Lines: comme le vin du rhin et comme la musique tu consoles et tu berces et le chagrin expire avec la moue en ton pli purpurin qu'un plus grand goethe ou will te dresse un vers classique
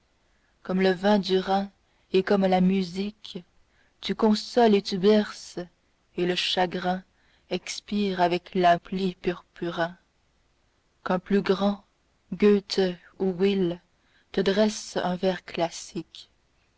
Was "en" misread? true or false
true